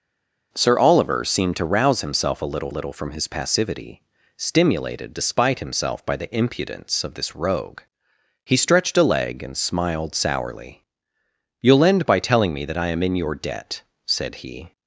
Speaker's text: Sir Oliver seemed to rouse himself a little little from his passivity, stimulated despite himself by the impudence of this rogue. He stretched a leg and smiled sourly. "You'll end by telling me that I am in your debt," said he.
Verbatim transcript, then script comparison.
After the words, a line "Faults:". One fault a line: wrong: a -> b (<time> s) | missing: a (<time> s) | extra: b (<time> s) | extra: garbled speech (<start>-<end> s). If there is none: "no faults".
Sir Oliver seemed to rouse himself a little little from his passivity, stimulated despite himself by the impudence of this rogue. He stretched a leg and smiled sourly. "You'll end by telling me that I am in your debt," said he.
Faults:
no faults